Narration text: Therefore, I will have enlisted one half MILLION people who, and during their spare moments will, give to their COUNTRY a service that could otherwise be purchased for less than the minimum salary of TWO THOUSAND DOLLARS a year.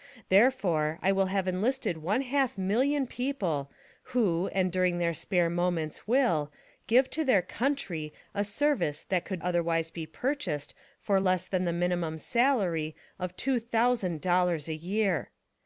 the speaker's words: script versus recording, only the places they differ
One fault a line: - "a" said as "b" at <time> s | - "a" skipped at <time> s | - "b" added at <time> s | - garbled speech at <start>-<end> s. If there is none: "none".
none